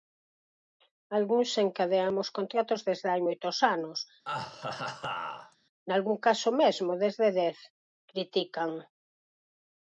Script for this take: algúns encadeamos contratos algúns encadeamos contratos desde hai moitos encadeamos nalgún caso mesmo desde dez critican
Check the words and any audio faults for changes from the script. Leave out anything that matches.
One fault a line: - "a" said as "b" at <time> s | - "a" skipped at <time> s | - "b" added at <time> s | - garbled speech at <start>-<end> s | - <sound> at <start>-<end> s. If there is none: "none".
- "algúns encadeamos contratos" skipped at 2.8 s
- "encadeamos" said as "anos" at 3.7 s
- laugh at 4.2-5.6 s